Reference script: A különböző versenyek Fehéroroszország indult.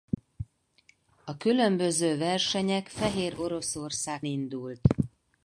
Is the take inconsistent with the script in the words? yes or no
no